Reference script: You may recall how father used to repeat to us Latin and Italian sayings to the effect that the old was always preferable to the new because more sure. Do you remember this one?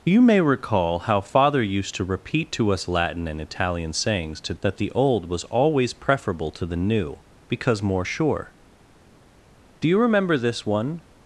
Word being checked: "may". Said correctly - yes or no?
yes